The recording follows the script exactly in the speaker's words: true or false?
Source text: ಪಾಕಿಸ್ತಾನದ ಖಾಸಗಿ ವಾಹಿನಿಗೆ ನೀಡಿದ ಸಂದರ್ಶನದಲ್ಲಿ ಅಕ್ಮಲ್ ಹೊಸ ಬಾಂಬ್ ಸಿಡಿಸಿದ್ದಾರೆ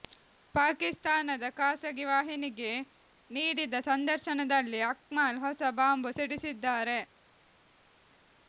true